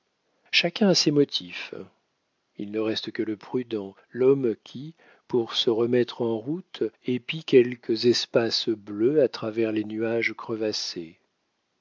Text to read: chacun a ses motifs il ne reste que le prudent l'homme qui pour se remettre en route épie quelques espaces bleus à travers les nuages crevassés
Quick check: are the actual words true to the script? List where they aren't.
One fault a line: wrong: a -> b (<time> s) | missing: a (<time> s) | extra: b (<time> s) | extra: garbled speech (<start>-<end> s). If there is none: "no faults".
no faults